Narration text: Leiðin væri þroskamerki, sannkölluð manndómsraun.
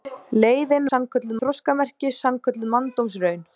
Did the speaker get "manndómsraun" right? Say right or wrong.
right